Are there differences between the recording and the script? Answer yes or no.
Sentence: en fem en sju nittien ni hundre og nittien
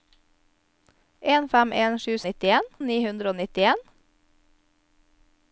no